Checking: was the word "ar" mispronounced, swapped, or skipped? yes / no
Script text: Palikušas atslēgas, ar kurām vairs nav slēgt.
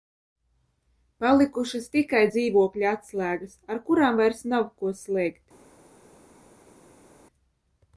no